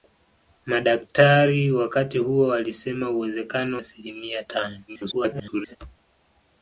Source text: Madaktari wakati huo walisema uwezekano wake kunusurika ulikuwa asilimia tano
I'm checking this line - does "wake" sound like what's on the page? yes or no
no